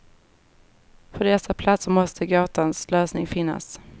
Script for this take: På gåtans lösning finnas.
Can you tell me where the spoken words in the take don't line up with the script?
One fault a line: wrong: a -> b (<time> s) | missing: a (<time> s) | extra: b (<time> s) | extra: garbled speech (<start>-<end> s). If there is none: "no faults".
extra: dessa platser måste (1.2 s)